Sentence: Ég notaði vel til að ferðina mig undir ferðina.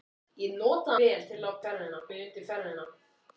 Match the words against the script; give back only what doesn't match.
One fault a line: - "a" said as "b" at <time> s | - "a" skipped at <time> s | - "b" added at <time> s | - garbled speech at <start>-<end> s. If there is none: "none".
none